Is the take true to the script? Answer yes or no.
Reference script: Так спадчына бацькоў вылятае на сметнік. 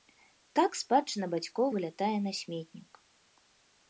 yes